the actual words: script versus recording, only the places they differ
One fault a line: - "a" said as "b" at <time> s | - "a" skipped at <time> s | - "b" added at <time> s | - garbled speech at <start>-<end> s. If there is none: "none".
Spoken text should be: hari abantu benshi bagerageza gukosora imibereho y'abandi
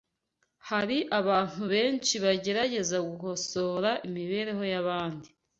none